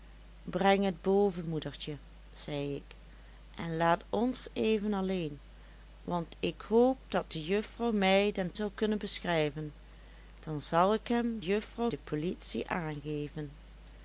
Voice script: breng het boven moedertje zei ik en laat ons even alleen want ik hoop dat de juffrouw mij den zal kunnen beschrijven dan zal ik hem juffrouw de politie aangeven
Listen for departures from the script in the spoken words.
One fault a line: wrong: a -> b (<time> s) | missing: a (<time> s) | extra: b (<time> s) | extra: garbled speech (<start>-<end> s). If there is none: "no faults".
no faults